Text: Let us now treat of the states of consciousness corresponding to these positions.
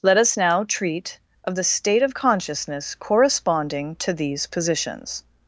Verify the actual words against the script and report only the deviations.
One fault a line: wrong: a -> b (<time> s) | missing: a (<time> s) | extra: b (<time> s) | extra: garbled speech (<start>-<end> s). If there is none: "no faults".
wrong: states -> state (1.6 s)